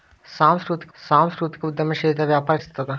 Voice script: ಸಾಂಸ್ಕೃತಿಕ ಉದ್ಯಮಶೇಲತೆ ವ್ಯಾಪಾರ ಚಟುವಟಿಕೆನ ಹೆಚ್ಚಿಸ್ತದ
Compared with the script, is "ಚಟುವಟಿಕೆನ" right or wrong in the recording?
wrong